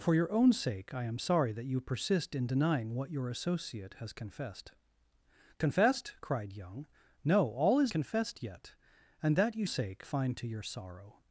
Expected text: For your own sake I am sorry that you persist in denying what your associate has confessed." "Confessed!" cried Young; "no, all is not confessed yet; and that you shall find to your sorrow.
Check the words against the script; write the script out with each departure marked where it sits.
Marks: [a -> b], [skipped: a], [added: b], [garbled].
For your own sake I am sorry that you persist in denying what your associate has confessed." "Confessed!" cried Young; "no, all is [skipped: not] confessed yet; and that you [shall -> sake] find to your sorrow.